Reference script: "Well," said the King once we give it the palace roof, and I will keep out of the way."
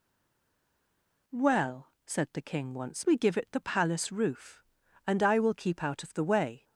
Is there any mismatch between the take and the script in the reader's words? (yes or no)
no